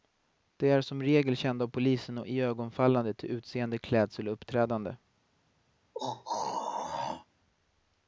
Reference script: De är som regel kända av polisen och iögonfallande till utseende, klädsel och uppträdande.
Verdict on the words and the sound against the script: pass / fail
fail